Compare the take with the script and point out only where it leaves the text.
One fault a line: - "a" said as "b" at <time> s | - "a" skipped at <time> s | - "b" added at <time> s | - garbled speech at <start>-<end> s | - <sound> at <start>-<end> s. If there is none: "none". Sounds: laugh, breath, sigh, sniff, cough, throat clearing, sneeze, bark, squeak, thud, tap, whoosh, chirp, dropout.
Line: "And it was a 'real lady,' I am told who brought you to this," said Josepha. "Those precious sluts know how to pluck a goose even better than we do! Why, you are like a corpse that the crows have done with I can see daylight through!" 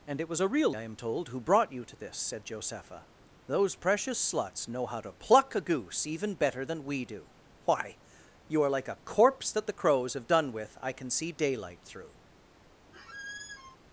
- "lady" skipped at 0.7 s
- squeak at 12.9-13.8 s